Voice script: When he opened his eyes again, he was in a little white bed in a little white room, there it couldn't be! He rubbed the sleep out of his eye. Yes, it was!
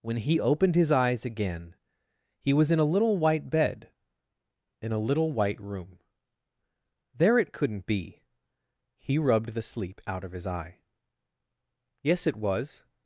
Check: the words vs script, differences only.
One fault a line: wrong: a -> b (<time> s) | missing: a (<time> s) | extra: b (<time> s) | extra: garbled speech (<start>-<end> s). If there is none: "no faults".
no faults